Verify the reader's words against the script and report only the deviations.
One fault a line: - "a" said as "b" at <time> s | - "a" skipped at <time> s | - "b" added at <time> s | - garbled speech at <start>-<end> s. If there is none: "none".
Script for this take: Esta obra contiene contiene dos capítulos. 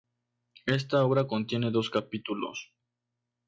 - "contiene" skipped at 1.7 s